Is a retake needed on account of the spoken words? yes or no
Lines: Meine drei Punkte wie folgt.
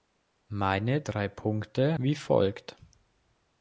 no